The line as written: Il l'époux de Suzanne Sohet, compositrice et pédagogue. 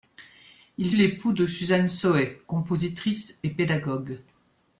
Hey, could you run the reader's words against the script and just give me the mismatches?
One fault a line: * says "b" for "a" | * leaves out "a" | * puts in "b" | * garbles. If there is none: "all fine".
all fine